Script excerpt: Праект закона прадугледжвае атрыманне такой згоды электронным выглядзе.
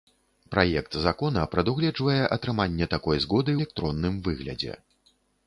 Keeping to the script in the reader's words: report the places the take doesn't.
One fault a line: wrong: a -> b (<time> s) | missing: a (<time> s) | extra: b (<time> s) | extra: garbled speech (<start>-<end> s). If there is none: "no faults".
no faults